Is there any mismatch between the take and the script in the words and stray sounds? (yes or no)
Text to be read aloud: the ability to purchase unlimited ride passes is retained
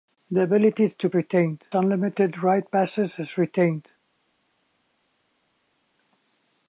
yes